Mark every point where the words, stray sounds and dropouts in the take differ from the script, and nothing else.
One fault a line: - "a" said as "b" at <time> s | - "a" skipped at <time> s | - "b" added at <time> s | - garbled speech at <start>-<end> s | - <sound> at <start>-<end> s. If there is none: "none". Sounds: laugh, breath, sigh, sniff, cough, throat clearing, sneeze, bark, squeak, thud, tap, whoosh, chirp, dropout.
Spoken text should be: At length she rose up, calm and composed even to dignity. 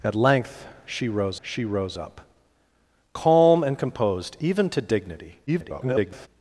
- "she rose" added at 1.4 s
- garbled speech at 5.5-6.3 s